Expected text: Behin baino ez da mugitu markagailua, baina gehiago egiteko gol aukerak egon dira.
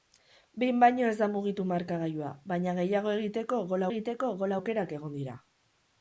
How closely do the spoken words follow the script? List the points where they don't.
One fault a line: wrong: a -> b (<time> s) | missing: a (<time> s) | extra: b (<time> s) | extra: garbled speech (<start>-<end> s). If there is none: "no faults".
extra: egiteko gol (3.9 s)